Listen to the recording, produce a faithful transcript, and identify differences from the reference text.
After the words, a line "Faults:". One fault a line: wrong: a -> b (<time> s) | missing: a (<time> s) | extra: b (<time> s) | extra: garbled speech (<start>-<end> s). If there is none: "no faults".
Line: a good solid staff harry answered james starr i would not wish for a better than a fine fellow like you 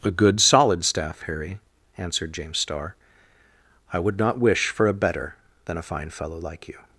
a good solid staff harry answered james starr i would not wish for a better than a fine fellow like you
Faults:
no faults